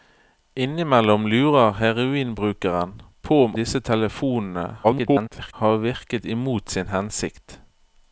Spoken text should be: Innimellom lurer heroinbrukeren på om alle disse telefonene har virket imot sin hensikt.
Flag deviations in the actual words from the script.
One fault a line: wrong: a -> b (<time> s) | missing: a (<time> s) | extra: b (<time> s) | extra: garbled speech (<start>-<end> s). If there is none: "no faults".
missing: alle (3.5 s)
extra: garbled speech (4.8-5.5 s)